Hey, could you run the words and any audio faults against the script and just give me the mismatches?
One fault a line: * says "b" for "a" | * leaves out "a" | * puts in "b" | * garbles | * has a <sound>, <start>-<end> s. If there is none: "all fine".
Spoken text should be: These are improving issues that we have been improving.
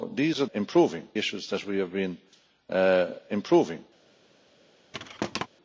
* has a thud, 4.9-5.5 s